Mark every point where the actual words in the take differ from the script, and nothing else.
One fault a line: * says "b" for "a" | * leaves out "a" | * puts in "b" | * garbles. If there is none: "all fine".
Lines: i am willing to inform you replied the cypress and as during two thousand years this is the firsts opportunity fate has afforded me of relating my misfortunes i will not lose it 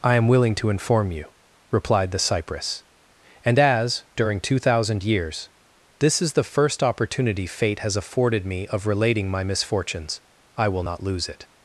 * says "first" for "firsts"